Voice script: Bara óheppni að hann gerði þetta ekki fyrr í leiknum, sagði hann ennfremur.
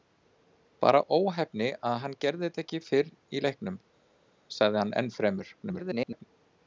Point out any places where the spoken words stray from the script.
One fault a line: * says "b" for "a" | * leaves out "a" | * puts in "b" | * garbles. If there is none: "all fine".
* garbles